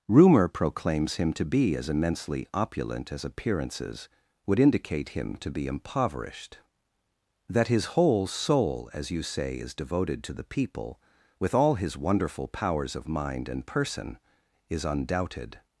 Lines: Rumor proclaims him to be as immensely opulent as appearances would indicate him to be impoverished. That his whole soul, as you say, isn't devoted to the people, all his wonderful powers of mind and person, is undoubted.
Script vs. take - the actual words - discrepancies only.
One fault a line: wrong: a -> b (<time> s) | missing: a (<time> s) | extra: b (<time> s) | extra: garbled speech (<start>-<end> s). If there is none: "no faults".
wrong: isn't -> is (9.6 s)
extra: with (11.4 s)